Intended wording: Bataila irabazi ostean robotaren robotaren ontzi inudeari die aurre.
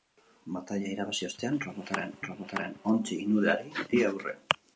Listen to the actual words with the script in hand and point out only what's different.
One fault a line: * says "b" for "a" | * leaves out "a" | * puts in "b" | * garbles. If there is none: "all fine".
all fine